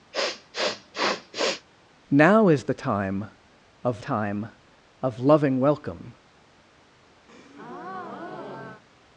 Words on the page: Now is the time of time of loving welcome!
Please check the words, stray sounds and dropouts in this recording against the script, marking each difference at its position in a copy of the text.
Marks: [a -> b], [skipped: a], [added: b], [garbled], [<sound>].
[sniff] Now is the time of time of loving welcome! [breath]